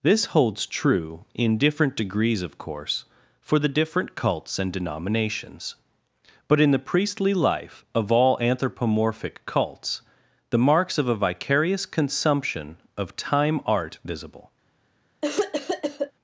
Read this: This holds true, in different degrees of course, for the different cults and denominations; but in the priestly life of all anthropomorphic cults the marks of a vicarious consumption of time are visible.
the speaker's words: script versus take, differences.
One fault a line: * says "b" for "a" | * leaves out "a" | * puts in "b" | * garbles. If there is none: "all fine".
* says "art" for "are"